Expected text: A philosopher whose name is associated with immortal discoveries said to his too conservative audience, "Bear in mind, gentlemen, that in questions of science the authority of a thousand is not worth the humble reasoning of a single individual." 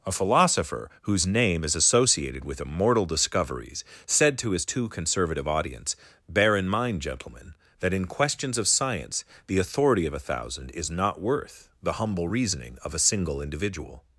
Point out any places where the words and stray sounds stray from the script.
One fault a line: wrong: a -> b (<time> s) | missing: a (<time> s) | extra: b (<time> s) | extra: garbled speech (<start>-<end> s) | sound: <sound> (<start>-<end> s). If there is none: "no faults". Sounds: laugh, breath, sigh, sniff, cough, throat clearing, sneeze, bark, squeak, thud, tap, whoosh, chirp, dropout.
no faults